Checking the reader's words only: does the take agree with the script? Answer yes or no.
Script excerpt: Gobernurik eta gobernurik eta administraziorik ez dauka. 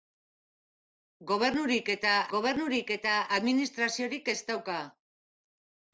yes